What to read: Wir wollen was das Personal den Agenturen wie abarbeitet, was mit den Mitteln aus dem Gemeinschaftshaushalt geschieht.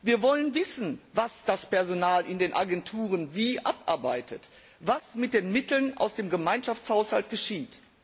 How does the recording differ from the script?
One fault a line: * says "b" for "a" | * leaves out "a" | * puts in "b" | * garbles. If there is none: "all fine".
* puts in "wissen"
* puts in "in"